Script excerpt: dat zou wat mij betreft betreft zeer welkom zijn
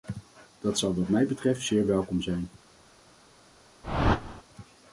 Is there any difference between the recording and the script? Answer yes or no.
yes